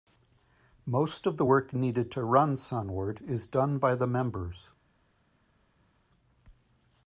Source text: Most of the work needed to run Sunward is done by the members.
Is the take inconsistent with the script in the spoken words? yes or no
no